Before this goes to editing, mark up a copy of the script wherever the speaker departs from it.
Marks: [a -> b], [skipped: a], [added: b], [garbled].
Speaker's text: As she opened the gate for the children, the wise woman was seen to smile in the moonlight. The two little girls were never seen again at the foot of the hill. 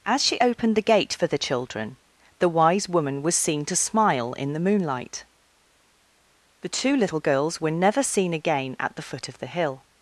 As she opened the gate for the children, the wise woman was seen to smile in the moonlight. The two little girls were never seen again at the foot of the hill.